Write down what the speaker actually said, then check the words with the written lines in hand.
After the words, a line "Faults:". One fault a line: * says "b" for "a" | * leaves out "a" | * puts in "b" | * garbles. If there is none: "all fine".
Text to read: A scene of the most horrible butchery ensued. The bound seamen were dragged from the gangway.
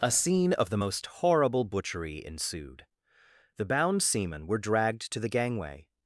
A scene of the most horrible butchery ensued. The bound seamen were dragged to the gangway.
Faults:
* says "to" for "from"